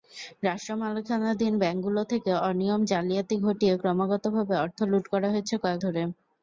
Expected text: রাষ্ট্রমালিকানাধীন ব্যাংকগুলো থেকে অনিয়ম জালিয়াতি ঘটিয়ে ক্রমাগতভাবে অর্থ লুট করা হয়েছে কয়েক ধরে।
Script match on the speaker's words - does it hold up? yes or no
yes